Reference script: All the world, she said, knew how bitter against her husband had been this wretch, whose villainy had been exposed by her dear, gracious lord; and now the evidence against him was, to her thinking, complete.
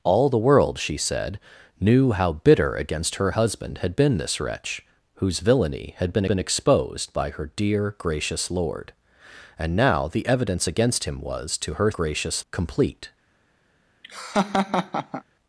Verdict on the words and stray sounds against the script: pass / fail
fail